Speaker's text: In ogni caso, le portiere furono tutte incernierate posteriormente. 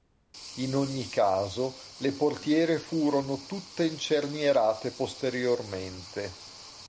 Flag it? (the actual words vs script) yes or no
no